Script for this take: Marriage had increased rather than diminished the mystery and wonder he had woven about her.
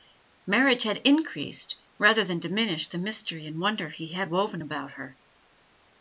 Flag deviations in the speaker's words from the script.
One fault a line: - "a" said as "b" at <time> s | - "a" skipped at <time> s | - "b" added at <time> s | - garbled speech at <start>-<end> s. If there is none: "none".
none